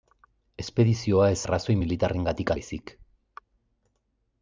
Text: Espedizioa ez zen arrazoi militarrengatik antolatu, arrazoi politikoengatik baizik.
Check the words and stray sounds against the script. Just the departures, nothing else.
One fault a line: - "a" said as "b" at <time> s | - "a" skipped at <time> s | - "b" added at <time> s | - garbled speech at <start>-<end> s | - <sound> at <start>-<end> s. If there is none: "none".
- "zen" skipped at 1.4 s
- "antolatu arrazoi politikoengatik" skipped at 2.5 s